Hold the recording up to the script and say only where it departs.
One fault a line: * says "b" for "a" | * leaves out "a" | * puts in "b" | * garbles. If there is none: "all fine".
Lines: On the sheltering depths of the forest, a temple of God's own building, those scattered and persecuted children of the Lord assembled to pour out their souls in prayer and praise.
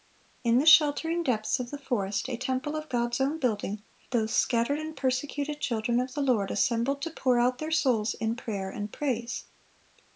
* says "In" for "On"